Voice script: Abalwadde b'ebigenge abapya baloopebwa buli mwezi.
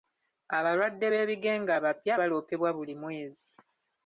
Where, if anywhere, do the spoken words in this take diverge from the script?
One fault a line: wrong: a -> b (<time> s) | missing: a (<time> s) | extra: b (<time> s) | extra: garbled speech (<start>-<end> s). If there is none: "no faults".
no faults